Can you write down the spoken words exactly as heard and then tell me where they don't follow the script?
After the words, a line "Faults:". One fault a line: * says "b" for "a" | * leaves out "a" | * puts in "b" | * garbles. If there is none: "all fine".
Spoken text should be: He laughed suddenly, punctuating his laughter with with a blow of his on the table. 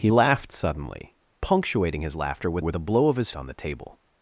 He laughed suddenly, punctuating his laughter with with a blow of his on the table.
Faults:
all fine